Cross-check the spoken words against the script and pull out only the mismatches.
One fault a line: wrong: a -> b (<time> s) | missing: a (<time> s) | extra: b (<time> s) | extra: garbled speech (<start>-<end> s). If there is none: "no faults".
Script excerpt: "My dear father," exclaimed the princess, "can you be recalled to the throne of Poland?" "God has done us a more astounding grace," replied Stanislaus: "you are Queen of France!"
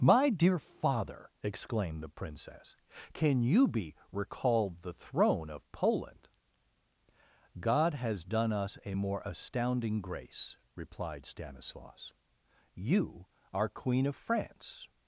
missing: to (4.8 s)